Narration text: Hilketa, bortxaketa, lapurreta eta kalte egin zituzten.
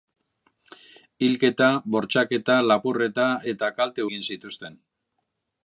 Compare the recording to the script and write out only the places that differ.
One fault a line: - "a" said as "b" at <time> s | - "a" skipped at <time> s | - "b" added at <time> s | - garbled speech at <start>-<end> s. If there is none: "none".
none